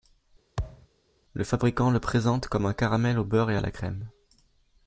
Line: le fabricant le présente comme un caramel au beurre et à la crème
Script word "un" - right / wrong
right